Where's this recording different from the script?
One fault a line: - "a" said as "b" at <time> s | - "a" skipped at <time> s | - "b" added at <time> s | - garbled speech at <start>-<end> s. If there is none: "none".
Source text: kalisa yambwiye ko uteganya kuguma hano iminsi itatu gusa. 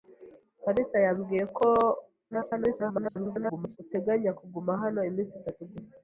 - garbled speech at 2.3-3.8 s